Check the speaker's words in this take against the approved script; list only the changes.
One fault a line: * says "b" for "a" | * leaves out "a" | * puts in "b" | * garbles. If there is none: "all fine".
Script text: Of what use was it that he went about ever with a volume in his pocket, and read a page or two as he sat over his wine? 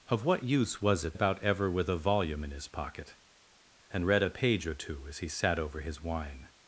* leaves out "that he went"